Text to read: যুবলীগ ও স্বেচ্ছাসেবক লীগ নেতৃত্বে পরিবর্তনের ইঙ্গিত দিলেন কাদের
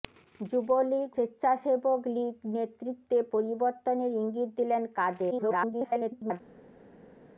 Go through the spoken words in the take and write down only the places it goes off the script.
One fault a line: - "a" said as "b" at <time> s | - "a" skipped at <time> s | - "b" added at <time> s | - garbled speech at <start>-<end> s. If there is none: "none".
- "ও" skipped at 1.1 s
- garbled speech at 5.3-6.4 s